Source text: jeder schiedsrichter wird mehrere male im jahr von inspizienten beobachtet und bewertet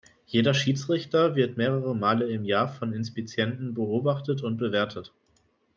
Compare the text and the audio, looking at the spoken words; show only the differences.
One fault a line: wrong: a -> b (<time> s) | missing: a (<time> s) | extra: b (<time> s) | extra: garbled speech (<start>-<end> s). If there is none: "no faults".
no faults